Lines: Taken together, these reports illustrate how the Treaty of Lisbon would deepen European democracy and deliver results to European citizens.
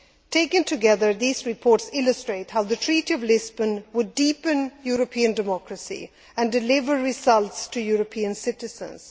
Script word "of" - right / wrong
right